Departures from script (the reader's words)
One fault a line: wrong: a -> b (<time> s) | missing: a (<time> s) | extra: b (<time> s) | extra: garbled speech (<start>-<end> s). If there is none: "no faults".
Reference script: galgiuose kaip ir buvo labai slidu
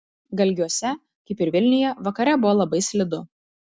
extra: vilniuje vakare (1.6 s)